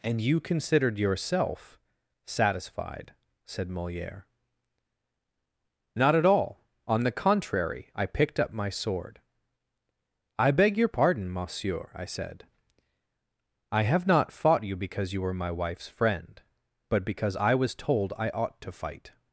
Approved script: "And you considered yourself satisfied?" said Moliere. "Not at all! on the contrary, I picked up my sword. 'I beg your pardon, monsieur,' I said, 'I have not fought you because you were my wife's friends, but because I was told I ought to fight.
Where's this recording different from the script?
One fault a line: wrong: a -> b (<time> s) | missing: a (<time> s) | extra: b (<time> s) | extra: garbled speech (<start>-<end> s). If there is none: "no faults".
wrong: friends -> friend (15.9 s)